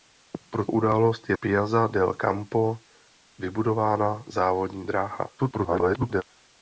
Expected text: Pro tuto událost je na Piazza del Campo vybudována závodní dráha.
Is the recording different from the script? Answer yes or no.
yes